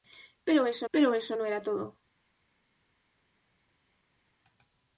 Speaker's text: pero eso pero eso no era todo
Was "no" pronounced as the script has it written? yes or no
yes